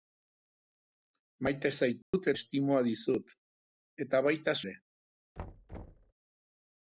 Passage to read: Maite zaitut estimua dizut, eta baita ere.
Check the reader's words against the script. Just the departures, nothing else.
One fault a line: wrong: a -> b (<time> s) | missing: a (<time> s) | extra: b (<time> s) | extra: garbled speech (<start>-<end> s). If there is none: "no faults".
no faults